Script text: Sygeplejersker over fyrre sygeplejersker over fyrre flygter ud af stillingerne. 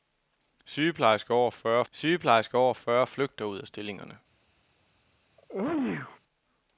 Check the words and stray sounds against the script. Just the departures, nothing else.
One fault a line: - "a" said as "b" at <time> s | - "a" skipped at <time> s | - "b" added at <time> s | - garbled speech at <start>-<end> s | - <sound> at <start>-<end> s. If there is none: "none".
- sneeze at 5.4-6.2 s